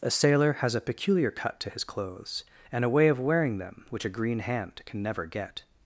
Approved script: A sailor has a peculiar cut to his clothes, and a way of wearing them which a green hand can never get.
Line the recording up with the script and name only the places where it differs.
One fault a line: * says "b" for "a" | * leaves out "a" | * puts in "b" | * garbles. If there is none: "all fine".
all fine